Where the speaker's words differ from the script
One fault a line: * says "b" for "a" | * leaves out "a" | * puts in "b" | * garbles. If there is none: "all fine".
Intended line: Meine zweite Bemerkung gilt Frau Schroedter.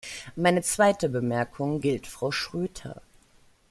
all fine